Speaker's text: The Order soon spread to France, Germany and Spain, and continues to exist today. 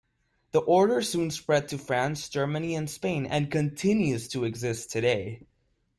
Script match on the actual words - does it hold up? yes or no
yes